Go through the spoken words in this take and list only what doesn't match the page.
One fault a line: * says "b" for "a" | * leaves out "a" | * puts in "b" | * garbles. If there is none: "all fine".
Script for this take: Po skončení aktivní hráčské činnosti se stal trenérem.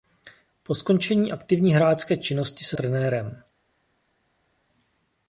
* leaves out "stal"